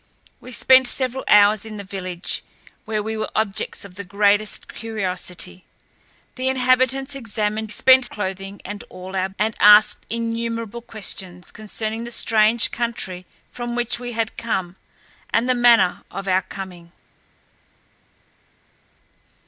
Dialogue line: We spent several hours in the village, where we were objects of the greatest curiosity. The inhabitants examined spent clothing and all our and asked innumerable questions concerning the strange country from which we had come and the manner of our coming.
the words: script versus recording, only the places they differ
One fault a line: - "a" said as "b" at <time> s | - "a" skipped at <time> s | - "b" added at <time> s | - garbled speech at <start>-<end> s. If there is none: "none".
none